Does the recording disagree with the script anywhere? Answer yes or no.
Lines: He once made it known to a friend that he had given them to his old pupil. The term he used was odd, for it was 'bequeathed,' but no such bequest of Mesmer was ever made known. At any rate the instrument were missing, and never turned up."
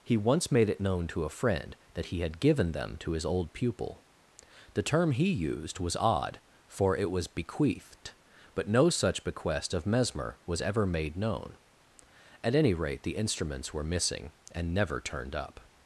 yes